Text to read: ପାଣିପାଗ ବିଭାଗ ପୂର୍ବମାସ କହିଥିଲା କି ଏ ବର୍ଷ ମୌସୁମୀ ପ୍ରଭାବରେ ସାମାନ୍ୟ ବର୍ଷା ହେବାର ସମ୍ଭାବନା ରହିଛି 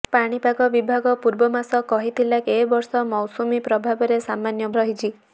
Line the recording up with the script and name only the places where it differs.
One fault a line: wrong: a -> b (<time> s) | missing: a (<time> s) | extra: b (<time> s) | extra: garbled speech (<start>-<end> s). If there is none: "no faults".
missing: କି (2.4 s)
missing: ବର୍ଷା ହେବାର ସମ୍ଭାବନା (4.7 s)